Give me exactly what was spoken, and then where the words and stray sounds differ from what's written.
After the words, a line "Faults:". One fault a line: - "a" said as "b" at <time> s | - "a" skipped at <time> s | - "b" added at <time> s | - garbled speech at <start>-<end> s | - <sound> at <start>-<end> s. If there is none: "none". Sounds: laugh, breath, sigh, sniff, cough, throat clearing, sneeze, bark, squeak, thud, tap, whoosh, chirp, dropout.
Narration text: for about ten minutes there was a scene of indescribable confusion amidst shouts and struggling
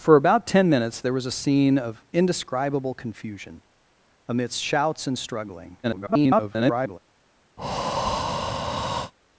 for about ten minutes there was a scene of indescribable confusion amidst shouts and struggling [garbled]
Faults:
- garbled speech at 5.8-7.0 s
- breath at 7.6-9.1 s